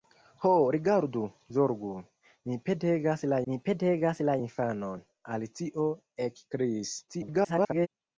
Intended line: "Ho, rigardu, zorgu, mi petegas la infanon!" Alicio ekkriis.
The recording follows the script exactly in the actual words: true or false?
false